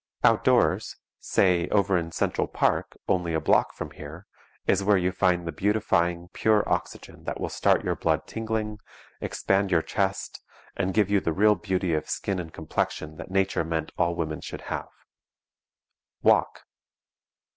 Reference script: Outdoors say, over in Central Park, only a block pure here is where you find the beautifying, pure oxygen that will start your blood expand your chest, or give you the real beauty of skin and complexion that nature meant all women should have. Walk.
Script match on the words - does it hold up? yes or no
no